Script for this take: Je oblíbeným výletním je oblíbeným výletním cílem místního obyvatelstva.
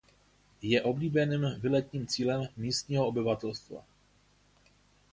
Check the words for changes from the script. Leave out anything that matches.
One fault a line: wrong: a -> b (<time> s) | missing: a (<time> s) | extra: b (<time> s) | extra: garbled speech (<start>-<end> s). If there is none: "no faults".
missing: je oblíbeným výletním (2.1 s)